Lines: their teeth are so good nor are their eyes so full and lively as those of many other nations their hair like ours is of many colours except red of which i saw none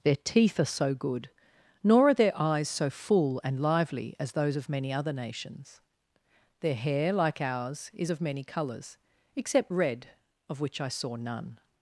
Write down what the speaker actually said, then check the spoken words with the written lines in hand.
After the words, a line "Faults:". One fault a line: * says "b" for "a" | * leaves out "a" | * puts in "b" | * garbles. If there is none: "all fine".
their teeth are so good nor are their eyes so full and lively as those of many other nations their hair like ours is of many colours except red of which i saw none
Faults:
all fine